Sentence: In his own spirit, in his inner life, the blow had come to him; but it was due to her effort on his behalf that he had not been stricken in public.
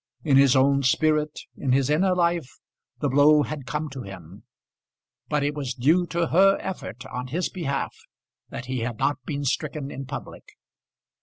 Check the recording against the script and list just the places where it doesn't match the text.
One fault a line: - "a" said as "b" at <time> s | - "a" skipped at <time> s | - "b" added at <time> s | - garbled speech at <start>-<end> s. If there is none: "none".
none